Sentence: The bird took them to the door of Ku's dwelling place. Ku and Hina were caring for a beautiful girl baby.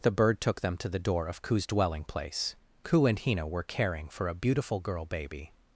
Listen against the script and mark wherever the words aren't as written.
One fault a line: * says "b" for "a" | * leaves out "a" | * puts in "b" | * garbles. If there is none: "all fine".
all fine